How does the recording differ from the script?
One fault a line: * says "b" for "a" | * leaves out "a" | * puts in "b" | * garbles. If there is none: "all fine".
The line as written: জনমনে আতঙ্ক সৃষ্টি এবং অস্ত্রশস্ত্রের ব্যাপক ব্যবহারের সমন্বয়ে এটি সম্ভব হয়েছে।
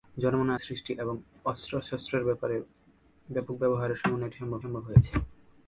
* leaves out "আতঙ্ক"
* puts in "সম্ভব"